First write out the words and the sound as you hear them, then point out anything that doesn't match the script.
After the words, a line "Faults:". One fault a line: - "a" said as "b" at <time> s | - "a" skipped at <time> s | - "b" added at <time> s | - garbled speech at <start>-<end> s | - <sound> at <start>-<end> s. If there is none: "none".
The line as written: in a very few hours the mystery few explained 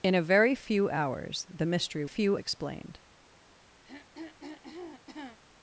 in a very few hours the mystery few explained
Faults:
- throat clearing at 3.8-5.4 s